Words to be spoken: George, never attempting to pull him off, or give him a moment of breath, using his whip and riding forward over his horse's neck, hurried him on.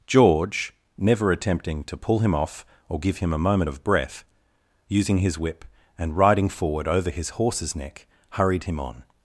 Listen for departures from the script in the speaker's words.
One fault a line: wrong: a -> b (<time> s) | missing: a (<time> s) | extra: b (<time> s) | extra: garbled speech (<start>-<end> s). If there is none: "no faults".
no faults